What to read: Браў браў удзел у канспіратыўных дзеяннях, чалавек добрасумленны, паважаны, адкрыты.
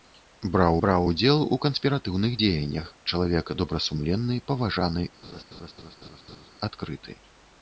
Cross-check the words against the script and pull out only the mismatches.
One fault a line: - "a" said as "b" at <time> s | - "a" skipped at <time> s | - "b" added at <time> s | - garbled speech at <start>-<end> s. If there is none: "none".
none